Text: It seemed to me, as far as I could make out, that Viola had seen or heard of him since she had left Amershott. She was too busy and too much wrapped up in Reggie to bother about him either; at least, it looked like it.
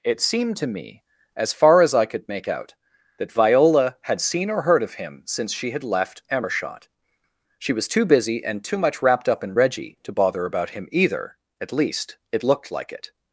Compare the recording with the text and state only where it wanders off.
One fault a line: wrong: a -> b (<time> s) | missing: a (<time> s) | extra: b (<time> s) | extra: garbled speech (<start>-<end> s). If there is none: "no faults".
no faults